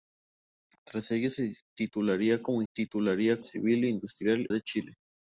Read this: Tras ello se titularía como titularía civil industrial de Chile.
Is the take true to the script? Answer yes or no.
yes